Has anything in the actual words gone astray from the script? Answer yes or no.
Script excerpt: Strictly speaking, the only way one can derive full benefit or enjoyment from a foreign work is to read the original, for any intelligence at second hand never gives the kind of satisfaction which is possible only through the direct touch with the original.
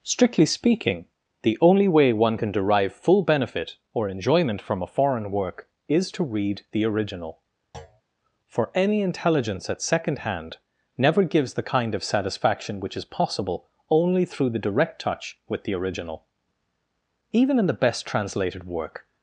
yes